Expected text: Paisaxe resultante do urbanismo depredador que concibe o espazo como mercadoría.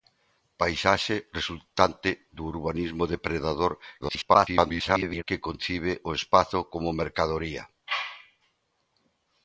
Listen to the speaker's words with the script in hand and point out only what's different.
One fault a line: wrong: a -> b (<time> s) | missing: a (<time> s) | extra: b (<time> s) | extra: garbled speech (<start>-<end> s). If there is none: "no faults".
extra: garbled speech (4.0-5.2 s)